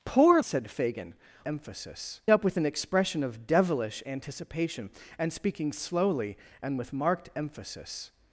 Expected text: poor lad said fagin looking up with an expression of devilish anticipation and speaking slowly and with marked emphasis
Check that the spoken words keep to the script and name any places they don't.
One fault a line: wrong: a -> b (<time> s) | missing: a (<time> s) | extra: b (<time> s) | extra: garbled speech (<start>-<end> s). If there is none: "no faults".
missing: lad (0.4 s)
wrong: looking -> emphasis (1.4 s)